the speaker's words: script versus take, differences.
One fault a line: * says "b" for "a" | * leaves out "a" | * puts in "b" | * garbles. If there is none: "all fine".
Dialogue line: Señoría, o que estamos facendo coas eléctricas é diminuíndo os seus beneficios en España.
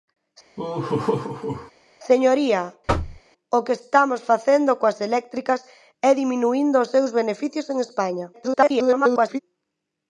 * garbles